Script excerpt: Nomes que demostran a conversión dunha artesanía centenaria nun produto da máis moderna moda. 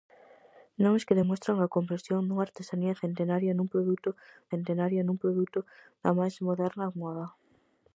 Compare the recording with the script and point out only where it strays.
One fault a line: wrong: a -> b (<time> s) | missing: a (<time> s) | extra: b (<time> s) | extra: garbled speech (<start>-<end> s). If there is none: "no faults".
extra: centenaria nun produto (4.5 s)